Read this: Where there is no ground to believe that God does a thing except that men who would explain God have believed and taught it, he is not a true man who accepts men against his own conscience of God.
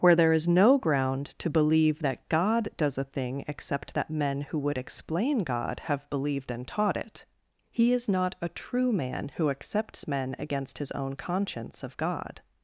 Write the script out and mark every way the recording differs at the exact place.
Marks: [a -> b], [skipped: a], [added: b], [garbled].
Where there is no ground to believe that God does a thing except that men who would explain God have believed and taught it, he is not a true man who accepts men against his own conscience of God.